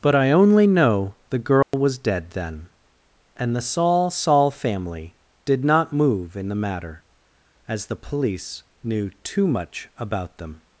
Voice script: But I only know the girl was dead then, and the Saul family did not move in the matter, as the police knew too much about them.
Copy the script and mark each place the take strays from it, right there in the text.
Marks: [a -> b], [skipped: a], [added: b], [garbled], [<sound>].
But I only know the girl [dropout] was dead then, and the Saul [added: Saul] family did not move in the matter, as the police knew too much about them.